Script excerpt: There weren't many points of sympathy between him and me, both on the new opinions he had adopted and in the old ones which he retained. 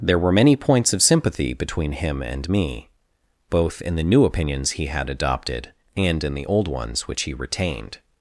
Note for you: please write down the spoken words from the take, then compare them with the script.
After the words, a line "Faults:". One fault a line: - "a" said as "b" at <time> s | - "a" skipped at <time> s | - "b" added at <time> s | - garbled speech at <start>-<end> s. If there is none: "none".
There were many points of sympathy between him and me, both in the new opinions he had adopted and in the old ones which he retained.
Faults:
- "weren't" said as "were" at 0.2 s
- "on" said as "in" at 3.8 s